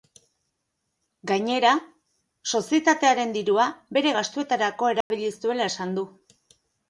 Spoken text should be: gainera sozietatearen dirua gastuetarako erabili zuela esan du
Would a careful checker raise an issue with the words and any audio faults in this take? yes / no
yes